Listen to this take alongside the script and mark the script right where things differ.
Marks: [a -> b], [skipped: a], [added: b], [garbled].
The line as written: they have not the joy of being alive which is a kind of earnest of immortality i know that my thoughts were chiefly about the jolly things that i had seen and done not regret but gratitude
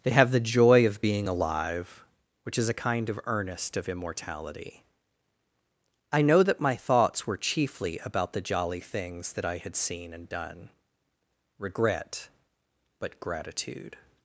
they have [skipped: not] the joy of being alive which is a kind of earnest of immortality i know that my thoughts were chiefly about the jolly things that i had seen and done [skipped: not] regret but gratitude